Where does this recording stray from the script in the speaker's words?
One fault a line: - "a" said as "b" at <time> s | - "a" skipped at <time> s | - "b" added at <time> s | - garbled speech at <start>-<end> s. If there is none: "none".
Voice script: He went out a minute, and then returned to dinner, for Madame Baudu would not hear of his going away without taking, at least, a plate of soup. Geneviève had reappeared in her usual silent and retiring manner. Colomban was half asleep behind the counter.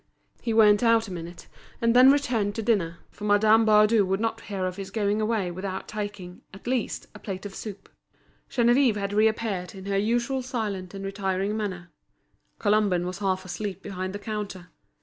none